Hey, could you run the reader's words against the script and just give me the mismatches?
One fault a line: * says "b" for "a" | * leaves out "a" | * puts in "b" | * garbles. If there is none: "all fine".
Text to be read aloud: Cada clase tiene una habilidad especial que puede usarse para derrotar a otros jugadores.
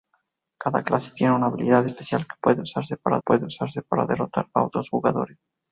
* puts in "puede usarse para"